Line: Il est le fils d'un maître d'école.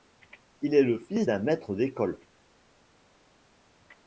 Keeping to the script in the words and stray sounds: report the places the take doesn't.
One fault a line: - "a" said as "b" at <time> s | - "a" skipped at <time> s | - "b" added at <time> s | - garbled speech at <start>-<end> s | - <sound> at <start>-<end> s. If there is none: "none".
none